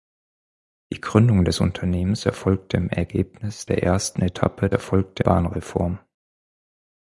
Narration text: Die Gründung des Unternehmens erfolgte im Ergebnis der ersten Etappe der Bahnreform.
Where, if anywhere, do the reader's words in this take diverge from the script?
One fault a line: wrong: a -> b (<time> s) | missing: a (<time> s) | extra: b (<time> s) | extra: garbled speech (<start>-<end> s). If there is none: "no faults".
wrong: der -> erfolgte (4.7 s)